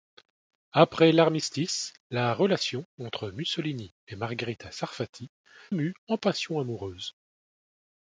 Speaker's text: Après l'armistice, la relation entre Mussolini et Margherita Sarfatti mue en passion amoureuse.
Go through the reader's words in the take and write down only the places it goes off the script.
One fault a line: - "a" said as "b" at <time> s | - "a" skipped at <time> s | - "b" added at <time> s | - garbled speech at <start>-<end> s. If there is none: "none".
none